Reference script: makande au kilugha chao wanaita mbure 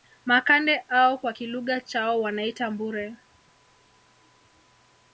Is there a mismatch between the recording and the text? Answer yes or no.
yes